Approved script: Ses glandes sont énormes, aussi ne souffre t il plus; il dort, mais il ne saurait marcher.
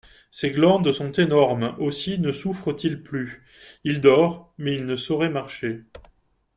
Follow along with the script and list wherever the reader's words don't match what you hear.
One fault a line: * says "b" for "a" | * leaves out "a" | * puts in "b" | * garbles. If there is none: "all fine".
all fine